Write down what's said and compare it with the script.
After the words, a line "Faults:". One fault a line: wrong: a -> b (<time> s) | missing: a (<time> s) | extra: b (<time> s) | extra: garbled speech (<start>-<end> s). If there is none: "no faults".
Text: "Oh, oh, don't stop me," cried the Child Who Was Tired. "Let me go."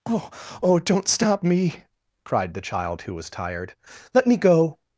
"Oh, oh, don't stop me," cried the Child Who Was Tired. "Let me go."
Faults:
no faults